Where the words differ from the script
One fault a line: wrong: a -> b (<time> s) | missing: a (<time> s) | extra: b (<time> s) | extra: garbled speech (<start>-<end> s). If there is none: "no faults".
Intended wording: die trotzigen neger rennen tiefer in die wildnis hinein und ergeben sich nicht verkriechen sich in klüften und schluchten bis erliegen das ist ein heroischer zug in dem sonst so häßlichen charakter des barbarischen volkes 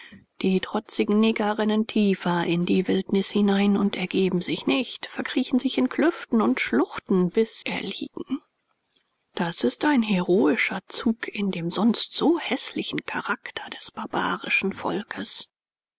no faults